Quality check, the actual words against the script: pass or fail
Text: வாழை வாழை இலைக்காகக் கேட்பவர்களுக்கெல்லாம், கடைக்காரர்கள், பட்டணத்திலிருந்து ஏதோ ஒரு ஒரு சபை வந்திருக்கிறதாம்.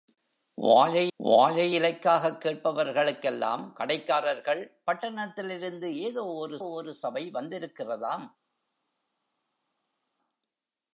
pass